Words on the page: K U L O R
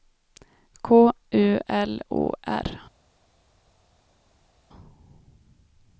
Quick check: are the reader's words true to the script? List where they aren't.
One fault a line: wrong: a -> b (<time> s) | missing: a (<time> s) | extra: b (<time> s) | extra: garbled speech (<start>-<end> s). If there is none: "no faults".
no faults